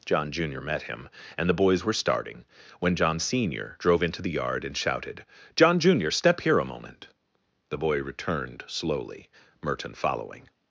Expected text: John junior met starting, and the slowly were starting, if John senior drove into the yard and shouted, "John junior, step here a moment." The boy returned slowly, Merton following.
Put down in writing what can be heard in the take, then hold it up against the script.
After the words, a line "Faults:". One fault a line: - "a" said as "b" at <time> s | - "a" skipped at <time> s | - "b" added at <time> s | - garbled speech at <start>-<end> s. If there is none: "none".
John junior met him, and the boys were starting, when John senior drove into the yard and shouted, "John junior, step here a moment." The boy returned slowly, Merton following.
Faults:
- "starting" said as "him" at 0.8 s
- "slowly" said as "boys" at 1.6 s
- "if" said as "when" at 2.8 s